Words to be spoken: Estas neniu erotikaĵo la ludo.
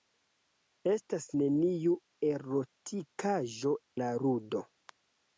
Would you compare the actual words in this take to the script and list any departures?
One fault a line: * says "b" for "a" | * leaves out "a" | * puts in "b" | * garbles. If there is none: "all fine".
all fine